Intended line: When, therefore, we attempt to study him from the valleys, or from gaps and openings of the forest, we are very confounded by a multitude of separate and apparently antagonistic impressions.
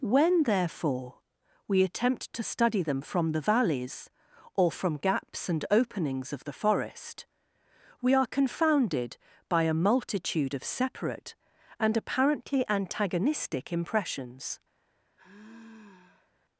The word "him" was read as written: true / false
false